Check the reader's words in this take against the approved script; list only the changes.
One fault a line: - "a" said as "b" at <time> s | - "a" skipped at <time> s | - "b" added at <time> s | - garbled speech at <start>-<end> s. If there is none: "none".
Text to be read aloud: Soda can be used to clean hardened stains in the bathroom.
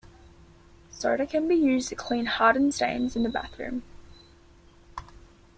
none